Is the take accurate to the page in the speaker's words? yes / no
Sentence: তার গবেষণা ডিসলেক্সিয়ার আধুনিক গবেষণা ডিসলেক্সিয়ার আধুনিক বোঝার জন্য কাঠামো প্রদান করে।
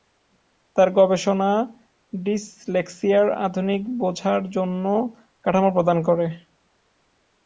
no